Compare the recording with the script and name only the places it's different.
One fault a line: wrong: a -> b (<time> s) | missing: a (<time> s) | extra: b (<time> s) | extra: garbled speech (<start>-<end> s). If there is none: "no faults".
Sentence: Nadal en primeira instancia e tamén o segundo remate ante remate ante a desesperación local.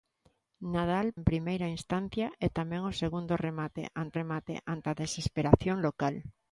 no faults